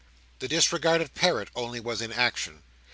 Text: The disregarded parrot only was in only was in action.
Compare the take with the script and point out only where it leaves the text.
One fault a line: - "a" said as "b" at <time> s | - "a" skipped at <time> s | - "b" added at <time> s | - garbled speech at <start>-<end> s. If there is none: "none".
- "only was in" skipped at 2.1 s